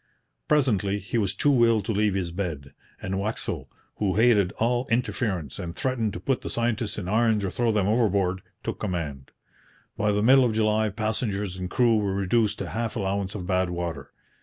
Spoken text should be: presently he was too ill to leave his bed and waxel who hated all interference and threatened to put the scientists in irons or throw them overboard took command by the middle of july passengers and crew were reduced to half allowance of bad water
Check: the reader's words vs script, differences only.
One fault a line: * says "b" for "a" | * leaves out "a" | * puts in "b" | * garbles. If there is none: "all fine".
all fine